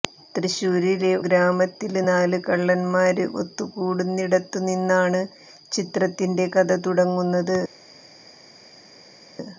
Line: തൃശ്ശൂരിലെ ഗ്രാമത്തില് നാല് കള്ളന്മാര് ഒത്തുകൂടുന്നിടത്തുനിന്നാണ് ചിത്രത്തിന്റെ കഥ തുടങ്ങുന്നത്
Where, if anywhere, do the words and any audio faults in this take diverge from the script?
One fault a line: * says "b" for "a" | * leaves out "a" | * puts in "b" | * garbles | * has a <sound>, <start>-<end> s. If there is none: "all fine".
all fine